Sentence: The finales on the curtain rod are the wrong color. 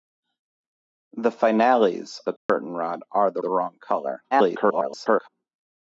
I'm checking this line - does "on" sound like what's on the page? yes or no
no